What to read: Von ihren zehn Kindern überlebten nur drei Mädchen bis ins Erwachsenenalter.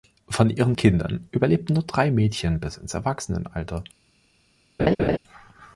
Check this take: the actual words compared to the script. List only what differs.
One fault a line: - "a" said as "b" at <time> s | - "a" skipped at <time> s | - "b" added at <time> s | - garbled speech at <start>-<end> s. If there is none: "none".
- "zehn" skipped at 0.8 s